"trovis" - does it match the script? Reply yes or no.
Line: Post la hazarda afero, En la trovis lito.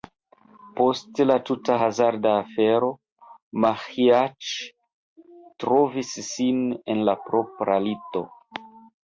no